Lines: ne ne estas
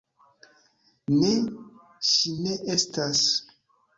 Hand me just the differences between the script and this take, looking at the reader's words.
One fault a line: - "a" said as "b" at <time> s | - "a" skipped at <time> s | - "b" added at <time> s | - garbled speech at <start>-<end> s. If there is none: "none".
- "ŝi" added at 2.1 s